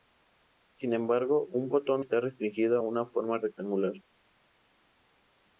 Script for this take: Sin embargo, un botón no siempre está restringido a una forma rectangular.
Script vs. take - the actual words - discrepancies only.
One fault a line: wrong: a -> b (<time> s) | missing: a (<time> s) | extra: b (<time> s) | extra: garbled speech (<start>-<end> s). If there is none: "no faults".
missing: no siempre (2.0 s)